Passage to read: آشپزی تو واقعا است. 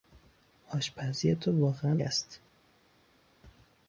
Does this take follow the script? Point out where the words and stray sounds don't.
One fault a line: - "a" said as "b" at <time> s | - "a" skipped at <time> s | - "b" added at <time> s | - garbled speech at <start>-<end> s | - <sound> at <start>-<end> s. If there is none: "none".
none